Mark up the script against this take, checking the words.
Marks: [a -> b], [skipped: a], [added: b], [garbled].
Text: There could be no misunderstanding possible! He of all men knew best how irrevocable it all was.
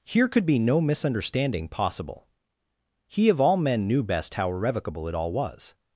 [There -> Here] could be no misunderstanding possible! He of all men knew best how irrevocable it all was.